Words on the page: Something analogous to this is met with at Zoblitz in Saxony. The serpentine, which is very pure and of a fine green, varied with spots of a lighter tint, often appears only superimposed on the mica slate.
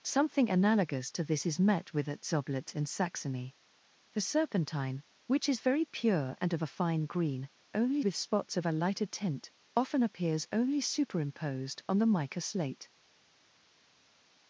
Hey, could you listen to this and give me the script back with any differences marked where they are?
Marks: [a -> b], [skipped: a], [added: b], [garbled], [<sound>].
Something analogous to this is met with at Zoblitz in Saxony. The serpentine, which is very pure and of a fine green, [varied -> only] with spots of a lighter tint, often appears only superimposed on the mica slate.